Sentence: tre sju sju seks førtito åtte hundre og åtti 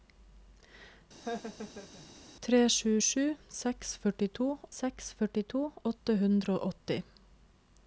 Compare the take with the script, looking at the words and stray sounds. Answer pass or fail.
fail